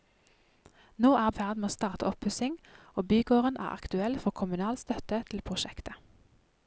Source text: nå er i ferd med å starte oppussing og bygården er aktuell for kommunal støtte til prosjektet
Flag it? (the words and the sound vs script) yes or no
no